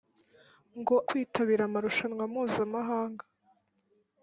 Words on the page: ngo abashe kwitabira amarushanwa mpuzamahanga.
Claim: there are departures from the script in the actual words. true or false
true